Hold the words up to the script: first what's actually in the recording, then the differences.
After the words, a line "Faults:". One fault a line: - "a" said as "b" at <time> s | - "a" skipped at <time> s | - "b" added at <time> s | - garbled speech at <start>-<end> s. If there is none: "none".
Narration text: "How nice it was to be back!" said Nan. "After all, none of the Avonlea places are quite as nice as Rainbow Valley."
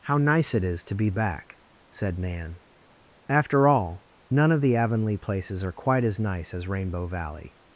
"How nice it is to be back!" said Nan. "After all, none of the Avonlea places are quite as nice as Rainbow Valley."
Faults:
- "was" said as "is" at 0.6 s